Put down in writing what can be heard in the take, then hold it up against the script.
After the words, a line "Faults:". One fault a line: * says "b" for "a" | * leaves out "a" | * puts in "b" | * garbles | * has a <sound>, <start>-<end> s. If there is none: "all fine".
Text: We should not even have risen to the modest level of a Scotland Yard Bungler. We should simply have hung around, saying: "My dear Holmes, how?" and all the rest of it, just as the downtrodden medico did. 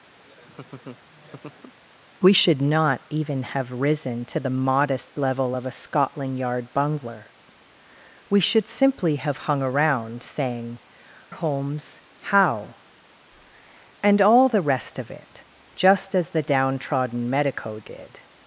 We should not even have risen to the modest level of a Scotland Yard Bungler. We should simply have hung around, saying: "Holmes, how?" and all the rest of it, just as the downtrodden medico did.
Faults:
* has a laugh, 0.2-1.8 s
* leaves out "My dear"